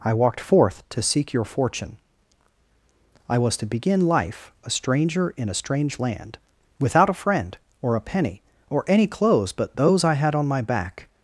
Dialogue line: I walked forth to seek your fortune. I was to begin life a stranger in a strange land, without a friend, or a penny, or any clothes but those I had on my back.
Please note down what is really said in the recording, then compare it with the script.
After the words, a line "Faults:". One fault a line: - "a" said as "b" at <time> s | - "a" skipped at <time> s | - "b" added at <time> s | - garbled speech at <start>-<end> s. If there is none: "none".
I walked forth to seek your fortune. I was to begin life a stranger in a strange land, without a friend, or a penny, or any clothes but those I had on my back.
Faults:
none